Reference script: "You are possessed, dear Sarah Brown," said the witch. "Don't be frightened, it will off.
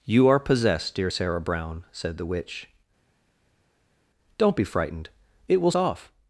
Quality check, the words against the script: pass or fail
pass